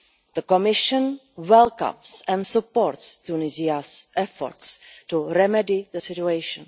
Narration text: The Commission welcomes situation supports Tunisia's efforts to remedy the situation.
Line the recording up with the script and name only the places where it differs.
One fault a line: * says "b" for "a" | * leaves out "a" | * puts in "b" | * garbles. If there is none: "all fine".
* says "and" for "situation"